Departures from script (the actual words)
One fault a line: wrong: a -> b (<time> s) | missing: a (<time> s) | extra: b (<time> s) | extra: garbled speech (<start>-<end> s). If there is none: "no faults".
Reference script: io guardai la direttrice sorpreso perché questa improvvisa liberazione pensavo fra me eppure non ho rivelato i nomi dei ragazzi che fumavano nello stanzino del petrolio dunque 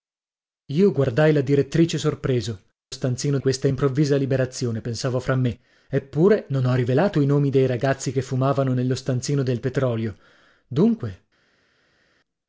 wrong: perché -> stanzino (2.9 s)